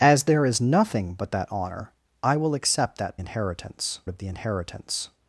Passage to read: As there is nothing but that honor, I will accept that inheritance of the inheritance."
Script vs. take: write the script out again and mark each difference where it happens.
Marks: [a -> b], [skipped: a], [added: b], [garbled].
As there is nothing but that honor, I will accept that inheritance of the inheritance."